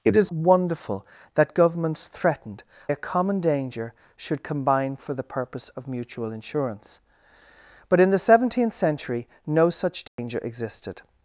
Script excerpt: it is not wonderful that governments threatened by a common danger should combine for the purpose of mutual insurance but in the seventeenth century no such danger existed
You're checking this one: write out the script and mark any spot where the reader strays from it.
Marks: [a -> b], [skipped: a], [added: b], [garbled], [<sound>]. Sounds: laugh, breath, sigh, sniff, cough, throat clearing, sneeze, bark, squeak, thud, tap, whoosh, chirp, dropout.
it is [skipped: not] wonderful that governments threatened [skipped: by] a common danger should combine for the purpose of mutual insurance but in the seventeenth century no such danger [dropout] existed